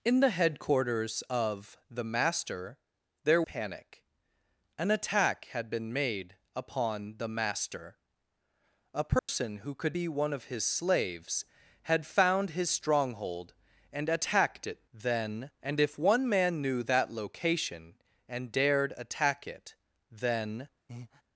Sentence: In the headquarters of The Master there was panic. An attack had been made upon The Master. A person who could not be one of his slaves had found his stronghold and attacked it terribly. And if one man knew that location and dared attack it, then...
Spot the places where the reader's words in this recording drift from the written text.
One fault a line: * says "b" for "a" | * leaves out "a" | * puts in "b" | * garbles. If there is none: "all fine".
* leaves out "was"
* leaves out "not"
* says "then" for "terribly"